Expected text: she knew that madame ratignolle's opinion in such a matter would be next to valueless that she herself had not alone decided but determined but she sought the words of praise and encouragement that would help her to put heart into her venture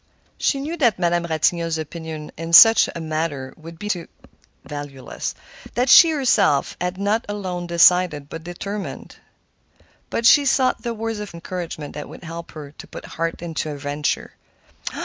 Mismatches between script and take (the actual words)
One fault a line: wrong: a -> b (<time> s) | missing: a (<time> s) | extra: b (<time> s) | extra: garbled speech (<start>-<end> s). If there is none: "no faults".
missing: next (3.9 s)
missing: praise and (11.3 s)